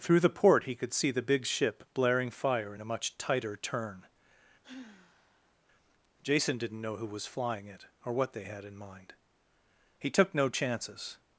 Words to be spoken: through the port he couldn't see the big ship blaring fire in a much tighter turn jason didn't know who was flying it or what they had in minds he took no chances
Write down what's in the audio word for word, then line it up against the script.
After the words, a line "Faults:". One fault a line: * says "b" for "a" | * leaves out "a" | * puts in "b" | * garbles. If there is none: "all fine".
through the port he could see the big ship blaring fire in a much tighter turn jason didn't know who was flying it or what they had in mind he took no chances
Faults:
* says "could" for "couldn't"
* says "mind" for "minds"